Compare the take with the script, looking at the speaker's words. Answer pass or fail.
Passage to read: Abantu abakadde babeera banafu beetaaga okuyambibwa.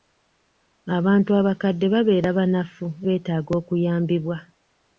pass